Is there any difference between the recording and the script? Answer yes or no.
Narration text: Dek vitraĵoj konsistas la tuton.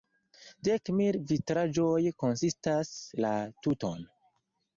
yes